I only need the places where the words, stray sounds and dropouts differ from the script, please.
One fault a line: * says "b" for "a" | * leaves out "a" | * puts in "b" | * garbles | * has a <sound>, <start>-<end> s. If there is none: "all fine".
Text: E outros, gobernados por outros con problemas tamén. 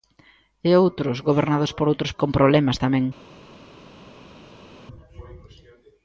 all fine